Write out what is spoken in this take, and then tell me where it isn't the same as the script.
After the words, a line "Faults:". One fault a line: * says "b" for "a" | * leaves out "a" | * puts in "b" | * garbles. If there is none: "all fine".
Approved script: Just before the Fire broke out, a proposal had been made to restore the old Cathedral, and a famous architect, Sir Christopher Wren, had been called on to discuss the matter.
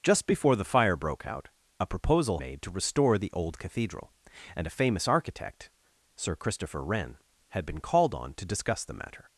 Just before the Fire broke out, a proposal made to restore the old Cathedral, and a famous architect, Sir Christopher Wren, had been called on to discuss the matter.
Faults:
* leaves out "had been"